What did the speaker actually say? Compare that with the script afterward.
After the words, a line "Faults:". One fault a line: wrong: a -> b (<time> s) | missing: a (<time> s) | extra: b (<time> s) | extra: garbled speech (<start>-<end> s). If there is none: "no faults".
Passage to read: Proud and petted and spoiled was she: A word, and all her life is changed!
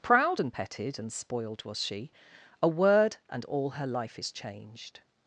Proud and petted and spoiled was she: A word, and all her life is changed!
Faults:
no faults